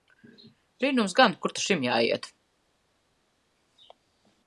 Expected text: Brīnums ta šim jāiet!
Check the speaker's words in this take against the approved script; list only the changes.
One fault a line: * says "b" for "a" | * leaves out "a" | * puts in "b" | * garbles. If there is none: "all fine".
* puts in "gan Kur"